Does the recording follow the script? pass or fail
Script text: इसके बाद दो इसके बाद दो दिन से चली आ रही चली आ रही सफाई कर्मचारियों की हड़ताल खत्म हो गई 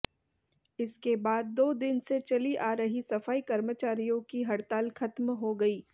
fail